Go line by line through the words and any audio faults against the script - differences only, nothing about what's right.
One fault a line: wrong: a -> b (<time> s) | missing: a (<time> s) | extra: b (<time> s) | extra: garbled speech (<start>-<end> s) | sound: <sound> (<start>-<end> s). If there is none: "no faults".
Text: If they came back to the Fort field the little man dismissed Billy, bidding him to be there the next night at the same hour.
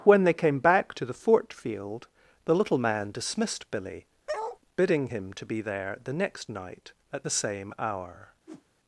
wrong: If -> When (0.0 s)
sound: bark (4.3-4.6 s)
sound: whoosh (8.5-8.6 s)